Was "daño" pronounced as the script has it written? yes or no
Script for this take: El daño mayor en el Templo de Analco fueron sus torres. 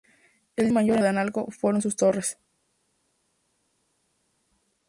no